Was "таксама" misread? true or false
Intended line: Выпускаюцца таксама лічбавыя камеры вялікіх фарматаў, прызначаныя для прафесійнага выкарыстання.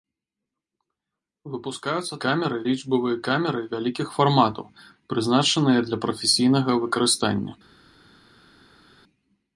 true